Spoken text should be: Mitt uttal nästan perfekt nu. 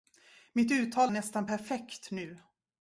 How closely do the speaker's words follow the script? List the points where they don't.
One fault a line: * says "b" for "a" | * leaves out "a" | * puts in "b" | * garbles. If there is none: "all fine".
all fine